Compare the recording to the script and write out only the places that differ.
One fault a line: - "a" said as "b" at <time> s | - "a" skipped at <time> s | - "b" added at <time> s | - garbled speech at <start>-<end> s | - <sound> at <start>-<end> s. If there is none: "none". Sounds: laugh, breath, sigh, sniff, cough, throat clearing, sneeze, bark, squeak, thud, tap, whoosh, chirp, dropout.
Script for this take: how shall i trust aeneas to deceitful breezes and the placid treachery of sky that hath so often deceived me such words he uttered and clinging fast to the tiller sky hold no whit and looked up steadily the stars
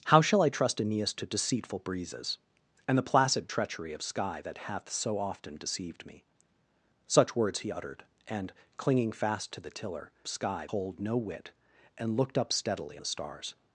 none